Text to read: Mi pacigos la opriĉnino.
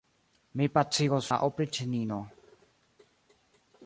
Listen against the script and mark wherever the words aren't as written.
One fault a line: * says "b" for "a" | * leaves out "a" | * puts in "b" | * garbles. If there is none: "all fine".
all fine